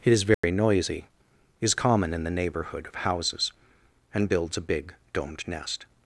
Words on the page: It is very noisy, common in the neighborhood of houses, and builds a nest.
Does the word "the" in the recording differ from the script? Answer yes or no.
no